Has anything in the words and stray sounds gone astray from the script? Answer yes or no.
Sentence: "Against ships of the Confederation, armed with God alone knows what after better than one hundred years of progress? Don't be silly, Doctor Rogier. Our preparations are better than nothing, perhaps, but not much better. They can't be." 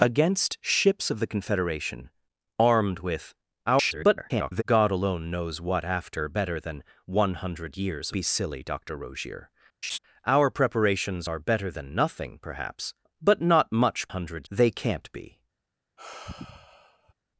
yes